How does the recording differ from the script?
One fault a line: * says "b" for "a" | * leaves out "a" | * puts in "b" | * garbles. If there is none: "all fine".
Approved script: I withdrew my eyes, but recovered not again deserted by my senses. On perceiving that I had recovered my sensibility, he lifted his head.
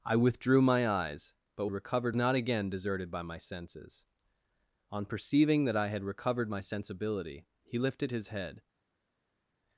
all fine